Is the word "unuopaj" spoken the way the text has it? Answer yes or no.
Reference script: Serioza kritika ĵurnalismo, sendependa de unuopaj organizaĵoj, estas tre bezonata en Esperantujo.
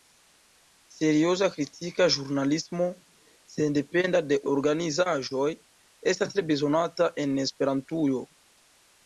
no